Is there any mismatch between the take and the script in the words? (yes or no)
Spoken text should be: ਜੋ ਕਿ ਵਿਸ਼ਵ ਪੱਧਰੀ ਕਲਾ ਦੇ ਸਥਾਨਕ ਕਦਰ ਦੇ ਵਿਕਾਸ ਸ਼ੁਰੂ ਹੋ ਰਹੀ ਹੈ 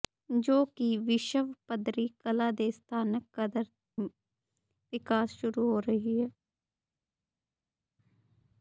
yes